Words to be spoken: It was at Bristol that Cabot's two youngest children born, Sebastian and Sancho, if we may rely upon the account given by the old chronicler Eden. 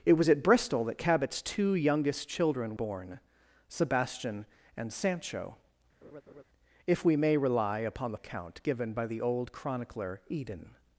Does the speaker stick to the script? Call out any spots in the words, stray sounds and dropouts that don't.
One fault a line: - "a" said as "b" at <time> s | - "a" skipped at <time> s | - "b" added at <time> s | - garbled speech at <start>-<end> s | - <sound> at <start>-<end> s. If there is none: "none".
- laugh at 6.0-6.4 s